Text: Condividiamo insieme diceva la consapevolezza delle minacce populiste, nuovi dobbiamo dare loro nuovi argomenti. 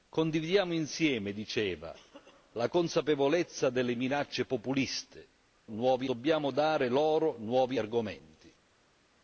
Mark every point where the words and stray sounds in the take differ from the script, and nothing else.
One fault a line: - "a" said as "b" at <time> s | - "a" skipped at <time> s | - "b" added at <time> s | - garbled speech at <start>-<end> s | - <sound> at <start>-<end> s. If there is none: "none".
none